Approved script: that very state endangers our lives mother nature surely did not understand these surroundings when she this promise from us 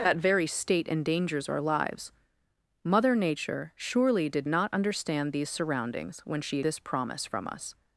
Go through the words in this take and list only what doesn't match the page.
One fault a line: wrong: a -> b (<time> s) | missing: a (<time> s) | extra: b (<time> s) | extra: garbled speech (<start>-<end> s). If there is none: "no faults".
no faults